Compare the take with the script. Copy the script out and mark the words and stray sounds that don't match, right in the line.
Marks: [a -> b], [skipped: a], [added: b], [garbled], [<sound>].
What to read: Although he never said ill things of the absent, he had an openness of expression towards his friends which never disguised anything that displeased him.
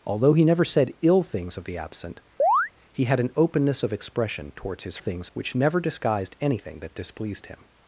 Although he never said ill things of the absent, [chirp] he had an openness of expression towards his [friends -> things] which never disguised anything that displeased him.